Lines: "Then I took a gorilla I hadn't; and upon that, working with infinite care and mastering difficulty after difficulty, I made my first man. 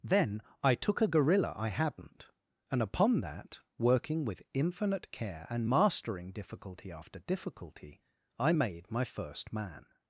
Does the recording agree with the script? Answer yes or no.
yes